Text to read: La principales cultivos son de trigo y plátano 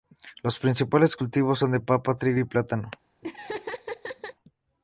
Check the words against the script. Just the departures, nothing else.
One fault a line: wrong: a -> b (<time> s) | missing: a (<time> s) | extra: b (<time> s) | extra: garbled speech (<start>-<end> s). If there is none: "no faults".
wrong: La -> Los (0.4 s)
extra: papa (1.8 s)